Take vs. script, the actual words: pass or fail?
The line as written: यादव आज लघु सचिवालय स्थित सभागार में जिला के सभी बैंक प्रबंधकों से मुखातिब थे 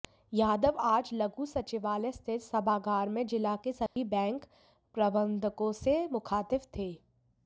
pass